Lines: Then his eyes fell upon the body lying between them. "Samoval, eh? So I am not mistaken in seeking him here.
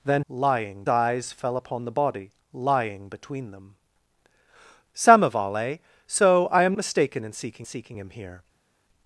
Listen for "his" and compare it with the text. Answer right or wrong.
wrong